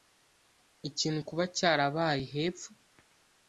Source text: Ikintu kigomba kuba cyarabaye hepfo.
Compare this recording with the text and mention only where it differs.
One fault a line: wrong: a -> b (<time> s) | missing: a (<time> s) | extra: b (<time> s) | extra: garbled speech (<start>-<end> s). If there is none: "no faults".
missing: kigomba (1.2 s)